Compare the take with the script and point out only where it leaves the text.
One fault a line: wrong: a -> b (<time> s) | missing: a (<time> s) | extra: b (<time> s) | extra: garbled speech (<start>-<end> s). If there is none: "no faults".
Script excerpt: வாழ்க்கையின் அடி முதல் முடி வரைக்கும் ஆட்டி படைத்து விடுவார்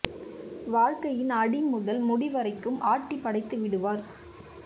no faults